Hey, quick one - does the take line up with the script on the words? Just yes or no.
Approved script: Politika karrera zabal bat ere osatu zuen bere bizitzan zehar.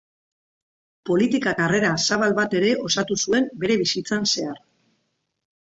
yes